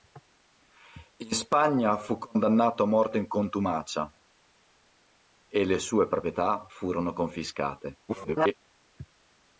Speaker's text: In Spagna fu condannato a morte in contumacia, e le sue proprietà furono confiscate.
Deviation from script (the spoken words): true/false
true